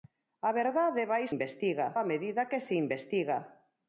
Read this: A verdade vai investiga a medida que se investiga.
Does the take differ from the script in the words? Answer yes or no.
no